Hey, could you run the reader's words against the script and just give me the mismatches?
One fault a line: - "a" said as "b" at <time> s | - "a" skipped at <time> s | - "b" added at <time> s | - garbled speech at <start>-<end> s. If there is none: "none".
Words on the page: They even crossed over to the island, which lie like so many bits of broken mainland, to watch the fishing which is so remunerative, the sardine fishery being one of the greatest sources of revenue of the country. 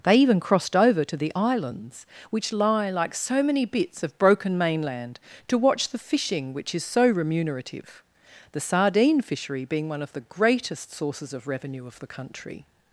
- "island" said as "islands" at 1.3 s